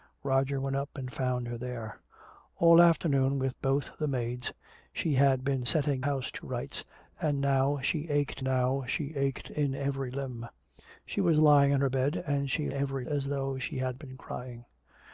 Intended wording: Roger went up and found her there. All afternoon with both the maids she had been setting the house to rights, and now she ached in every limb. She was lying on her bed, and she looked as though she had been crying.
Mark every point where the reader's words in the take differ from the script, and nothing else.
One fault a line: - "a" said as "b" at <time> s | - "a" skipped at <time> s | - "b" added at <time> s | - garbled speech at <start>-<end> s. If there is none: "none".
- "the" skipped at 6.0 s
- "now she ached" added at 8.4 s
- "looked" said as "every" at 12.7 s